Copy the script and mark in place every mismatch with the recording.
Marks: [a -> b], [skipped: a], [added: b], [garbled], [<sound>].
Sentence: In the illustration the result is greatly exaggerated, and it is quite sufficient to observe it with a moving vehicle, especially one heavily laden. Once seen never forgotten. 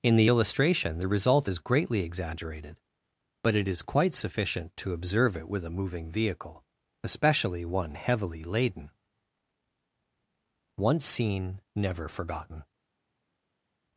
In the illustration the result is greatly exaggerated, [and -> but] it is quite sufficient to observe it with a moving vehicle, especially one heavily laden. Once seen never forgotten.